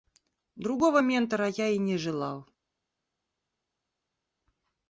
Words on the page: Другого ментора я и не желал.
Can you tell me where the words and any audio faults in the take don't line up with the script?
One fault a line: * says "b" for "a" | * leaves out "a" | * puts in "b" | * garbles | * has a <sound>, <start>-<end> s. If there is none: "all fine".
all fine